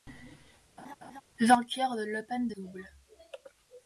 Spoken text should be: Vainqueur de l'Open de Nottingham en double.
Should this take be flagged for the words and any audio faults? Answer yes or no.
yes